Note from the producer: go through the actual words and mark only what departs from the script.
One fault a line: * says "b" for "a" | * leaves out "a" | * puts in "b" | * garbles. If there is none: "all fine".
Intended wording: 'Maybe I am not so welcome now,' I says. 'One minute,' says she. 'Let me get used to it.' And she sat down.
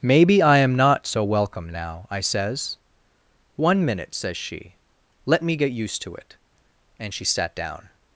all fine